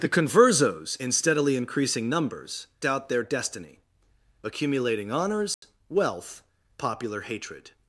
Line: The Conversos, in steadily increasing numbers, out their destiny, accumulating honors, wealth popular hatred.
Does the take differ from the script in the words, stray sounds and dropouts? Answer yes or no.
yes